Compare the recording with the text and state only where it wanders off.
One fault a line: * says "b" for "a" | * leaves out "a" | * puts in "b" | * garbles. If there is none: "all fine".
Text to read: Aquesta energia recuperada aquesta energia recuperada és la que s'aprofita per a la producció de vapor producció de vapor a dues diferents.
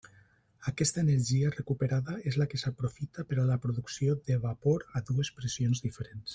* leaves out "aquesta energia recuperada"
* leaves out "producció de vapor"
* puts in "pressions"